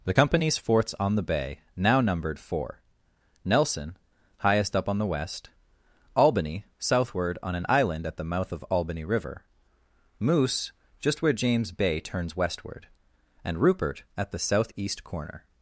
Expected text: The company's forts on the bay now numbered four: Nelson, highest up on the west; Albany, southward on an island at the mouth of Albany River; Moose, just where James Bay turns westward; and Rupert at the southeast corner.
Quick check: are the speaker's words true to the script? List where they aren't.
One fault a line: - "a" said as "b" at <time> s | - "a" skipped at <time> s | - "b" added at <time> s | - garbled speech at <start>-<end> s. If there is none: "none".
none